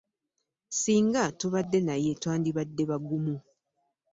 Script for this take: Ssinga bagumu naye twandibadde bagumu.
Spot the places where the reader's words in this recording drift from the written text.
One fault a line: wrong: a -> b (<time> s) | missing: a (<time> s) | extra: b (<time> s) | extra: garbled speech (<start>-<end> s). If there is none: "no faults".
wrong: bagumu -> tubadde (1.4 s)